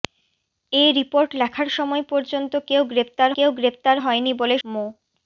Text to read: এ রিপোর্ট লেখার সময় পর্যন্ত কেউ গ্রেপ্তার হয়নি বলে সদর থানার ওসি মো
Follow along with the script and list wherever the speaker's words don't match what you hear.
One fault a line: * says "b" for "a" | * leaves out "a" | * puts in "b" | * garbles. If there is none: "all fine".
* puts in "কেউ গ্রেপ্তার"
* leaves out "সদর থানার ওসি"